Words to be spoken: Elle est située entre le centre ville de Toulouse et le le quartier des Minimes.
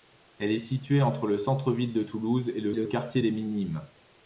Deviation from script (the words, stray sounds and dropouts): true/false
false